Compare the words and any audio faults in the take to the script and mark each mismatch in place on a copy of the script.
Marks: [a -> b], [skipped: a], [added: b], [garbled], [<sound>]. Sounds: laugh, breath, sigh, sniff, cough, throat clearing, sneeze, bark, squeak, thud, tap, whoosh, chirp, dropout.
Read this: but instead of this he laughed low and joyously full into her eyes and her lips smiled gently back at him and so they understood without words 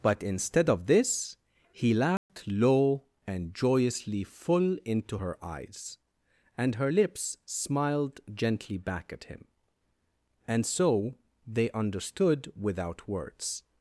but instead of this he laughed [dropout] low and joyously full into her eyes and her lips smiled gently back at him and so they understood without words